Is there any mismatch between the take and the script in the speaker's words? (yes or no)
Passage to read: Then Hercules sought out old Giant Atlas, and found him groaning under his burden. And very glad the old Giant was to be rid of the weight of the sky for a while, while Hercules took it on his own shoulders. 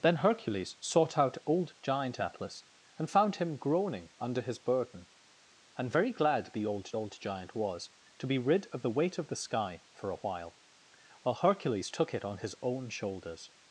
yes